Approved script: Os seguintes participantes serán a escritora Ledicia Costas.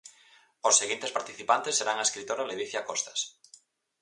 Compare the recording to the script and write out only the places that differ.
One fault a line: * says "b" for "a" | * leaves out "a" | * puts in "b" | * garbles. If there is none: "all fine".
all fine